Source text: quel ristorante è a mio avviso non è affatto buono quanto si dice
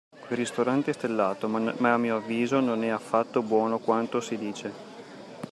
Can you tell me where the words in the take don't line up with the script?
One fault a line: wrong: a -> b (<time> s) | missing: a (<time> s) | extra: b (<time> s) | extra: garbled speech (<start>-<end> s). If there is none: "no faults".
extra: stellato ma (0.9 s)